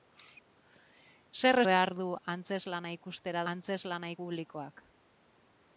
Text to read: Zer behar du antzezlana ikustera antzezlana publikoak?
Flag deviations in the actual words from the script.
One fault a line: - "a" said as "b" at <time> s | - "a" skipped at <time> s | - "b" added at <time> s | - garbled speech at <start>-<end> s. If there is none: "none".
none